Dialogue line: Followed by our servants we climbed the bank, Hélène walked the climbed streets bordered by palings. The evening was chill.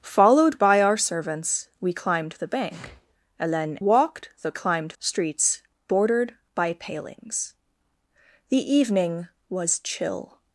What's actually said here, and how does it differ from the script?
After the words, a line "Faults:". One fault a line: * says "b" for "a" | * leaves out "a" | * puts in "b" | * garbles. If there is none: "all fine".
Followed by our servants we climbed the bank, Hélène walked the climbed streets bordered by palings. The evening was chill.
Faults:
all fine